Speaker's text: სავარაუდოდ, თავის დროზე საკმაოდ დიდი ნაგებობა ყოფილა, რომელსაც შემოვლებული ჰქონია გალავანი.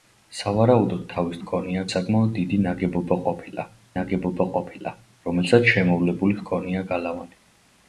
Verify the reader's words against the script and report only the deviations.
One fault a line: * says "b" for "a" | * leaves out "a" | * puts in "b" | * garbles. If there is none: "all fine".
* says "ჰქონია" for "დროზე"
* puts in "ნაგებობა ყოფილა"